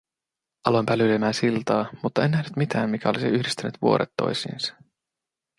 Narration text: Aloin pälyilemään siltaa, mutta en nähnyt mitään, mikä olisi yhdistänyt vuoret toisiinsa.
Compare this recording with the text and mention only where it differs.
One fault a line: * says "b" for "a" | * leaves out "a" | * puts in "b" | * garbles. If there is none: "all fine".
all fine